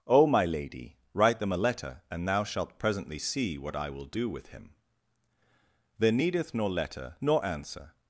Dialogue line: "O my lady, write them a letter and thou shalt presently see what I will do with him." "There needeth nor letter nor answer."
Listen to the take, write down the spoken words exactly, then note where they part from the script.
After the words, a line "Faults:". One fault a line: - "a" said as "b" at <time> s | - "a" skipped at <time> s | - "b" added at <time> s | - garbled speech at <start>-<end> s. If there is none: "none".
"O my lady, write them a letter and thou shalt presently see what I will do with him." "There needeth nor letter nor answer."
Faults:
none